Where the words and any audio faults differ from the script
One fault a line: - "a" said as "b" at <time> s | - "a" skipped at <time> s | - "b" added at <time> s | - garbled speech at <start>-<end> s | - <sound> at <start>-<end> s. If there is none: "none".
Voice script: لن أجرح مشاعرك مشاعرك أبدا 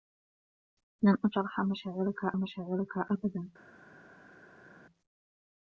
none